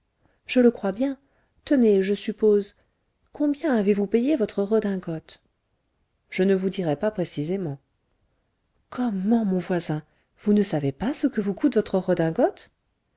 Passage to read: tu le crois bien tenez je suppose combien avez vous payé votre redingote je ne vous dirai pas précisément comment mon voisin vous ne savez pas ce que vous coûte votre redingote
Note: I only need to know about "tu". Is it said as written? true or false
false